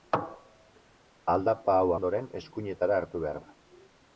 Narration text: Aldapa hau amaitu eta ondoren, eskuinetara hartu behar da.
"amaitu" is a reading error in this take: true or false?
true